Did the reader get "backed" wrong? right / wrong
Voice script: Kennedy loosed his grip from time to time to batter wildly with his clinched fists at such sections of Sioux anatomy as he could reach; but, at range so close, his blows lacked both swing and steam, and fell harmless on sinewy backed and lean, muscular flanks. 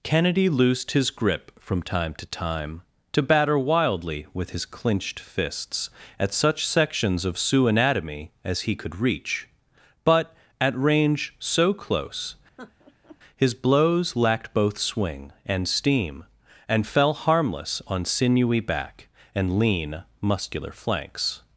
wrong